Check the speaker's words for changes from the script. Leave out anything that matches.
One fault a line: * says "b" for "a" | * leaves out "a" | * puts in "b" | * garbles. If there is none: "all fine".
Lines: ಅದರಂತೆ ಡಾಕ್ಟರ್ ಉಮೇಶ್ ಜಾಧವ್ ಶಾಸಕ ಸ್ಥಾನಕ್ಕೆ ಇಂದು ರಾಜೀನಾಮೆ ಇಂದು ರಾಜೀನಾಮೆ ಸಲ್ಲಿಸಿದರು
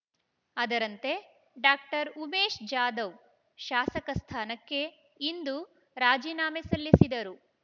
* leaves out "ಇಂದು ರಾಜೀನಾಮೆ"